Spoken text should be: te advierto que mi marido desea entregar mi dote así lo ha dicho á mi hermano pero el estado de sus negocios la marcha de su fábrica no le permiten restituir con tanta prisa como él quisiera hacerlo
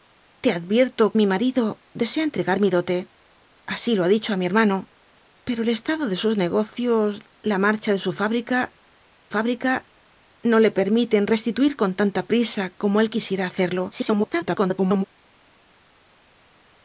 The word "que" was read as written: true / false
false